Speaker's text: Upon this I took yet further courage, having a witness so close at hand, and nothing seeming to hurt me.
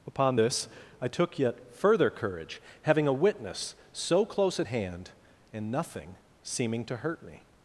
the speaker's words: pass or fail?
pass